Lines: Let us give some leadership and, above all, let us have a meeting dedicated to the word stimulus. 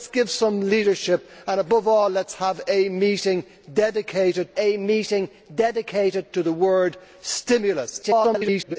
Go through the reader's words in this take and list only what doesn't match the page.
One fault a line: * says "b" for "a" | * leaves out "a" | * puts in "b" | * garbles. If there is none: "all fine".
* puts in "a meeting dedicated"
* garbles